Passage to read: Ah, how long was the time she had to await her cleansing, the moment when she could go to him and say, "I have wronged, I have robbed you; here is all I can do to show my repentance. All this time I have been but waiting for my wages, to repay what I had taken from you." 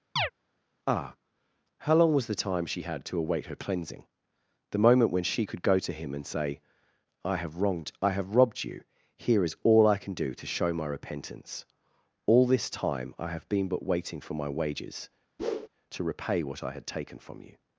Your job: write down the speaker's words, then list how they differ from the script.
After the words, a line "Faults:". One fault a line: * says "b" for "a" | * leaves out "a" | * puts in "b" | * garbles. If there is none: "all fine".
Ah, how long was the time she had to await her cleansing, the moment when she could go to him and say, "I have wronged, I have robbed you; here is all I can do to show my repentance. All this time I have been but waiting for my wages, to repay what I had taken from you."
Faults:
all fine